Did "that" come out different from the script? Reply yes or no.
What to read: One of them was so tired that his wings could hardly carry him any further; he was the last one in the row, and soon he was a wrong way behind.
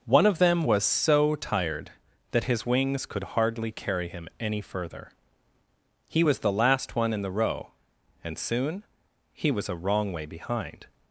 no